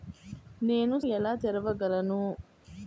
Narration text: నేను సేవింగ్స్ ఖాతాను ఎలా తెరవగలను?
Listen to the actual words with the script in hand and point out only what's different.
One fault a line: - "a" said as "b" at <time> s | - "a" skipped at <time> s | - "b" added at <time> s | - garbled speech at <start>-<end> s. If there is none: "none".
- "సేవింగ్స్ ఖాతాను" skipped at 1.0 s